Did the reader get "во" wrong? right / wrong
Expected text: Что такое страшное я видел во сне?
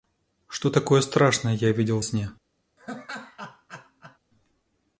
wrong